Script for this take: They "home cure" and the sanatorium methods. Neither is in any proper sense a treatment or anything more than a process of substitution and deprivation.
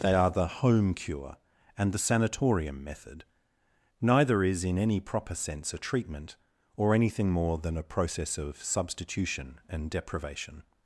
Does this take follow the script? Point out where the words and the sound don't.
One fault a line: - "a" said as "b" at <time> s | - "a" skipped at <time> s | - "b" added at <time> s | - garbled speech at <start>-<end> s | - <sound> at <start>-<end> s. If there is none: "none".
- "are the" added at 0.1 s
- "methods" said as "method" at 2.8 s